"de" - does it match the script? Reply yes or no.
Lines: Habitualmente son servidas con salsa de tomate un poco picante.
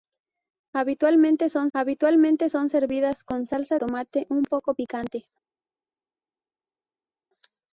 no